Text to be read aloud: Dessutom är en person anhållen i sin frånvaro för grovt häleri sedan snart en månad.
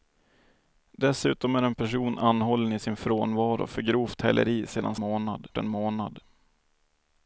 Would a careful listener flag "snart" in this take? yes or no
yes